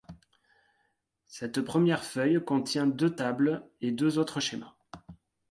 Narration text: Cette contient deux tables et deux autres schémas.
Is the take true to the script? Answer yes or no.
no